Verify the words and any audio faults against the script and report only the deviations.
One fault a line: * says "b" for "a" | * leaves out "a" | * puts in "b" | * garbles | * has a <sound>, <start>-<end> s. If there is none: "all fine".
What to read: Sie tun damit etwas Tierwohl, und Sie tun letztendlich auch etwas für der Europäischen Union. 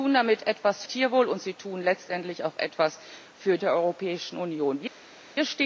all fine